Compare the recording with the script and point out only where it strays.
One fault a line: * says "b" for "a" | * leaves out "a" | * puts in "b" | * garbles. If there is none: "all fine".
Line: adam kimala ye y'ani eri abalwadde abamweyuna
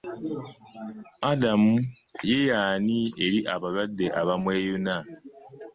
* leaves out "kimala"